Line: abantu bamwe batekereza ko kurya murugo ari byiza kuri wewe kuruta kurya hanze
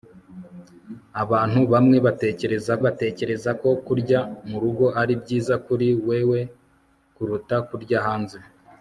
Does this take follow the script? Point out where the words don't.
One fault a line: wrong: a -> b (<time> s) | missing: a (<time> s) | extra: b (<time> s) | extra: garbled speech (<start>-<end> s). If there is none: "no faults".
extra: batekereza (2.8 s)